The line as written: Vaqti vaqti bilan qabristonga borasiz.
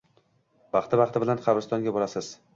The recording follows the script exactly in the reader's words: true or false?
true